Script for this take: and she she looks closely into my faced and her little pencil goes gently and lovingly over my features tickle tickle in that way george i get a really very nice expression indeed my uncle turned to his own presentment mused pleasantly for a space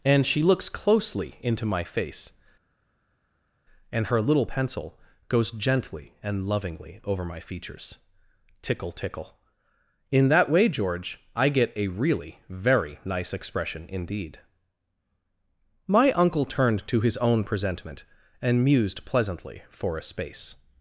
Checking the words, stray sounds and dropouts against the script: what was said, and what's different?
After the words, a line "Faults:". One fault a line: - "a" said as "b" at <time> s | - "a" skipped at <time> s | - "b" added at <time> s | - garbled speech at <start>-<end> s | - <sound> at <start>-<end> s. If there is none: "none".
and she looks closely into my face and her little pencil goes gently and lovingly over my features tickle tickle in that way george i get a really very nice expression indeed my uncle turned to his own presentment and mused pleasantly for a space
Faults:
- "she" skipped at 0.4 s
- "faced" said as "face" at 1.8 s
- "and" added at 18.4 s